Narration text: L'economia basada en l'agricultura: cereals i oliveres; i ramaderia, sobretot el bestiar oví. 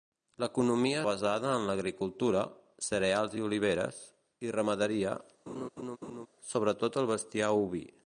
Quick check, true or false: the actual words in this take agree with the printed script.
true